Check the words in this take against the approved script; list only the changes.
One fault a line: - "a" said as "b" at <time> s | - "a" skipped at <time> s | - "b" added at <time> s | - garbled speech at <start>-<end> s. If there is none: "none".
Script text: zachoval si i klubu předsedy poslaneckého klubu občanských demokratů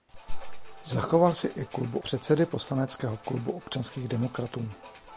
none